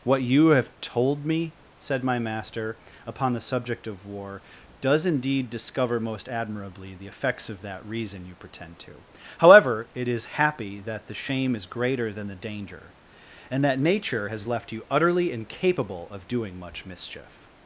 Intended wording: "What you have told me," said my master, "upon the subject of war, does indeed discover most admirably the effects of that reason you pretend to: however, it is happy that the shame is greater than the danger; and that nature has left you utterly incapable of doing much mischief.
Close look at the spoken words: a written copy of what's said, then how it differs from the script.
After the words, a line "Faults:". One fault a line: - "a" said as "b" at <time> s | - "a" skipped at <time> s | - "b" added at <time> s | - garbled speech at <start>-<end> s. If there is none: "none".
"What you have told me," said my master, "upon the subject of war, does indeed discover most admirably the effects of that reason you pretend to: however, it is happy that the shame is greater than the danger; and that nature has left you utterly incapable of doing much mischief.
Faults:
none